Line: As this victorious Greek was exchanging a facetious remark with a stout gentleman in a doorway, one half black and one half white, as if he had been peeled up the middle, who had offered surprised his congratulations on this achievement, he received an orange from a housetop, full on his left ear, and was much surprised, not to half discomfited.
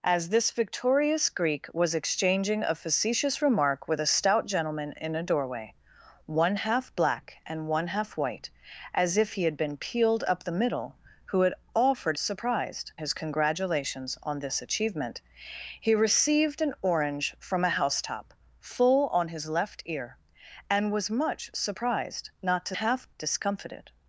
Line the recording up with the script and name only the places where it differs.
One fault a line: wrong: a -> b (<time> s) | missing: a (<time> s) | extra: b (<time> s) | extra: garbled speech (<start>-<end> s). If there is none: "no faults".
no faults